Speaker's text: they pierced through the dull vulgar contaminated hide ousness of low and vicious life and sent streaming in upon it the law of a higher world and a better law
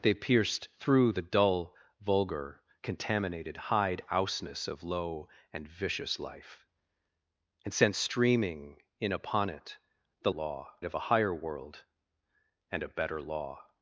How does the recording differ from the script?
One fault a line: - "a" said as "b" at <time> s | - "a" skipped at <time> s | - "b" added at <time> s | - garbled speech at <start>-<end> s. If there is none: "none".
none